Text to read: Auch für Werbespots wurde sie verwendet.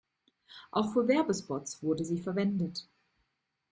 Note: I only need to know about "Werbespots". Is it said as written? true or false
true